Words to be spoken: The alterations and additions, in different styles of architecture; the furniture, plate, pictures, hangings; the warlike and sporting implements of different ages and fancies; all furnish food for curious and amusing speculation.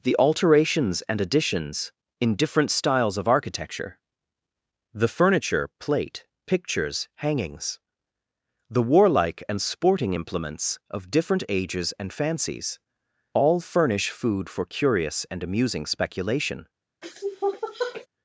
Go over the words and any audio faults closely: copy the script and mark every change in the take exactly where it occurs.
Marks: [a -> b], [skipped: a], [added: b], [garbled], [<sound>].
The alterations and additions, in different styles of architecture; the furniture, plate, pictures, hangings; the warlike and sporting implements of different ages and fancies; all furnish food for curious and amusing speculation. [sniff]